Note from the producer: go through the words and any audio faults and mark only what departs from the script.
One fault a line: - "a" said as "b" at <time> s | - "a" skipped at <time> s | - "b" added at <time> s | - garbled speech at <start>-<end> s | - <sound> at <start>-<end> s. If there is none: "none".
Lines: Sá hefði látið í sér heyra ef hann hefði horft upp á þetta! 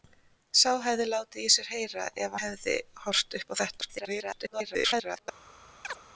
- "hann" skipped at 2.4 s
- garbled speech at 3.8-5.3 s
- chirp at 5.8-6.0 s